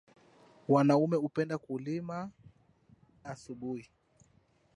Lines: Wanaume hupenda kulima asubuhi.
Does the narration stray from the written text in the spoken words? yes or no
no